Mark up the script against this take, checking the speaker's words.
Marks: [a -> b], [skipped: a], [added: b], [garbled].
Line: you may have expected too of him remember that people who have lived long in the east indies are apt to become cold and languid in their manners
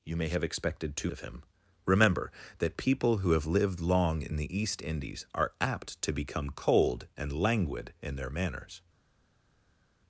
you may have expected too of him remember that people who have lived long in the east indies are apt to become cold and languid in their manners